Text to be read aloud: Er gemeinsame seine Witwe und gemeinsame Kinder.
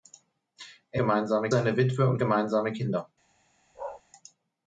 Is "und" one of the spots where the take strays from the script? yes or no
no